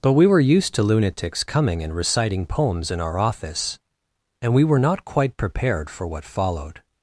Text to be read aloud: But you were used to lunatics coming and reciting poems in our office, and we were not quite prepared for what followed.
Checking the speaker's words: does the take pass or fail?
fail